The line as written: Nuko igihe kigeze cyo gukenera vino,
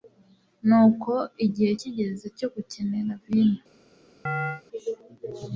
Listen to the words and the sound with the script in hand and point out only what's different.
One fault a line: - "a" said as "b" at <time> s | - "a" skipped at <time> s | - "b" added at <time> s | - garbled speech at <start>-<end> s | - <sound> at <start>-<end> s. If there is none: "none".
- chirp at 4.3-4.6 s